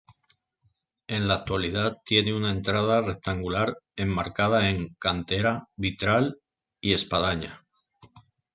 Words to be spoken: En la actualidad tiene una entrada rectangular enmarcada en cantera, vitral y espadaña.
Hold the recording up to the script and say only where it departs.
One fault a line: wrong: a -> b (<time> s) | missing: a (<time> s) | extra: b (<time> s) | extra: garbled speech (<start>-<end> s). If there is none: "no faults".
no faults